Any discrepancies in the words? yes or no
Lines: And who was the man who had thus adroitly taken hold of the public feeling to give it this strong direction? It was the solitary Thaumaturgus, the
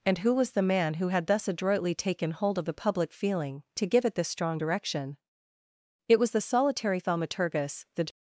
no